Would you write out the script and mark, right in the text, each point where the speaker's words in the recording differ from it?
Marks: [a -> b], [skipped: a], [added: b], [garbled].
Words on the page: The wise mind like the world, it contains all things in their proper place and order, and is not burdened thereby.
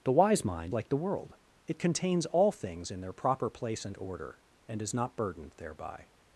The wise mind like the world, it contains all things in their proper place and order, and is not burdened thereby.